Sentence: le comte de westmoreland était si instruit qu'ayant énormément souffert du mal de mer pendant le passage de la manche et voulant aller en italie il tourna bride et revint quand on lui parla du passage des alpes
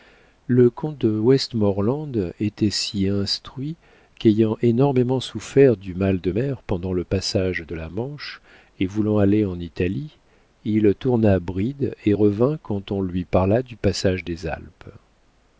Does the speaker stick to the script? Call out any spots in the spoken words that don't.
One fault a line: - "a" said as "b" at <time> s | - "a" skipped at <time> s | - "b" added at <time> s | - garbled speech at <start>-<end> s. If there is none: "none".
none